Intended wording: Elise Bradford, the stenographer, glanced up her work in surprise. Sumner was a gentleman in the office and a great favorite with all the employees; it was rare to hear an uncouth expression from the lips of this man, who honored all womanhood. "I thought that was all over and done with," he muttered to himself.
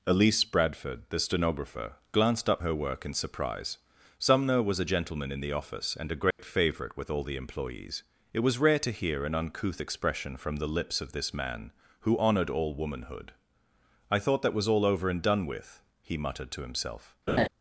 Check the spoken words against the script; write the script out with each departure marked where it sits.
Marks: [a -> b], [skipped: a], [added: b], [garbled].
Elise Bradford, the stenographer, glanced up her work in surprise. Sumner was a gentleman in the office and a great favorite with all the employees; it was rare to hear an uncouth expression from the lips of this man, who honored all womanhood. "I thought that was all over and done with," he muttered to himself.